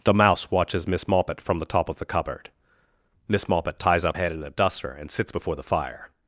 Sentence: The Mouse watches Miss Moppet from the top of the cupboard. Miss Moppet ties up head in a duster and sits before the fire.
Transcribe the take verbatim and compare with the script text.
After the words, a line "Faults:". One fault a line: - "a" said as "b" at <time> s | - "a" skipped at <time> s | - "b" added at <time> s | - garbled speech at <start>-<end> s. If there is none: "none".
The Mouse watches Miss Moppet from the top of the cupboard. Miss Moppet ties up head in a duster and sits before the fire.
Faults:
none